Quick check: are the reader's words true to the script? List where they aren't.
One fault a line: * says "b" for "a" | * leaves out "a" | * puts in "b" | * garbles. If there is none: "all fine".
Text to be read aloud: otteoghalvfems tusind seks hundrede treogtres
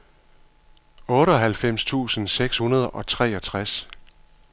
* puts in "og"